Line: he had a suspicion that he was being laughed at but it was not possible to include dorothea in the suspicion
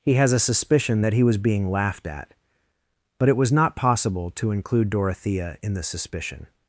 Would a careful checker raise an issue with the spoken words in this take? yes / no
yes